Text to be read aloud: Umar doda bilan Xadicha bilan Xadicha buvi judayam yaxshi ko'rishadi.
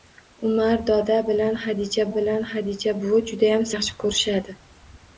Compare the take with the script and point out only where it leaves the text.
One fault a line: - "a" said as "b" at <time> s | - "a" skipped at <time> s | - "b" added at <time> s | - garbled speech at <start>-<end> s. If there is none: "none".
none